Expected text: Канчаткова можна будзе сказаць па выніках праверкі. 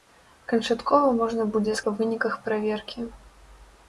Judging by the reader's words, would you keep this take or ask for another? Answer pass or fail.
fail